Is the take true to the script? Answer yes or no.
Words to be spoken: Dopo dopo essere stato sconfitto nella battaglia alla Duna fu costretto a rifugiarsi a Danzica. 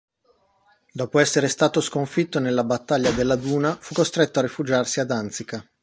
no